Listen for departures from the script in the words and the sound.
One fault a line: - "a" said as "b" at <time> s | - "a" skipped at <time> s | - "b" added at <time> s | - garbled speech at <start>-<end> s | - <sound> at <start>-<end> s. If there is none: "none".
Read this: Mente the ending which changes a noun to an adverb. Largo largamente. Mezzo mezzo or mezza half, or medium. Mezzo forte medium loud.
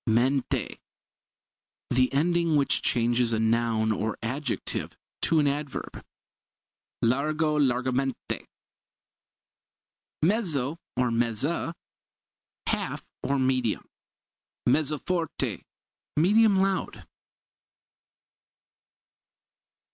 - "or adjective" added at 3.9 s
- "mezzo" skipped at 10.8 s